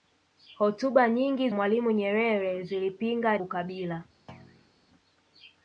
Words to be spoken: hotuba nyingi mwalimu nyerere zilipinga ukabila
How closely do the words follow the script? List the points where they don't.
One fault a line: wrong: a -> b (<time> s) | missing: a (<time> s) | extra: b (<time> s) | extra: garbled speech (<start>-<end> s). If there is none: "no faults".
no faults